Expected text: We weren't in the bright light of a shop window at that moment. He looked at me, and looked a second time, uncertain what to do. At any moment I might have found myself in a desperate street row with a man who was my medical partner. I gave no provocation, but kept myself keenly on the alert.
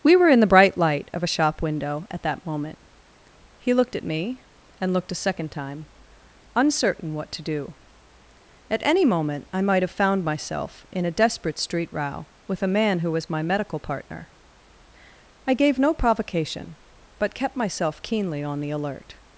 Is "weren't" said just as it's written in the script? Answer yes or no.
no